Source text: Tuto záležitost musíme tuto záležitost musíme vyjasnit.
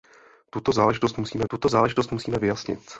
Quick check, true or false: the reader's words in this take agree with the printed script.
true